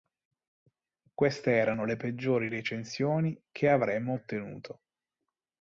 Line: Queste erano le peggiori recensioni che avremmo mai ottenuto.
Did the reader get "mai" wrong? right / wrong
wrong